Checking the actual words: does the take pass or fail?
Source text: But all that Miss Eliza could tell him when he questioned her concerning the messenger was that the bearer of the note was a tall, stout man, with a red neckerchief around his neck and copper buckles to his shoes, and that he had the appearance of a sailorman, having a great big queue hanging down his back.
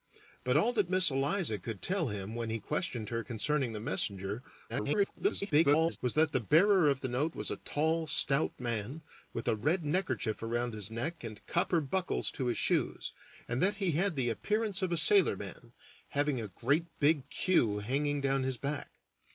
fail